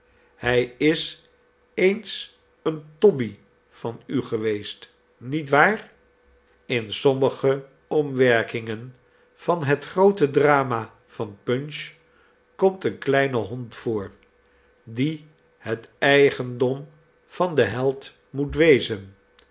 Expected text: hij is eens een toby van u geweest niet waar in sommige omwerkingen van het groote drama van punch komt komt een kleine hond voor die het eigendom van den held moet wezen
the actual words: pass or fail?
fail